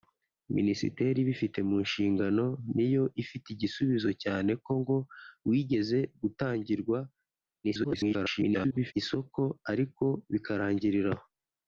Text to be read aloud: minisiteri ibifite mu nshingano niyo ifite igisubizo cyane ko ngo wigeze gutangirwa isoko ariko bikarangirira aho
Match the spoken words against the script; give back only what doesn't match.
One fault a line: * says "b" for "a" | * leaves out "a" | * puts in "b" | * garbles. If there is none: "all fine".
* garbles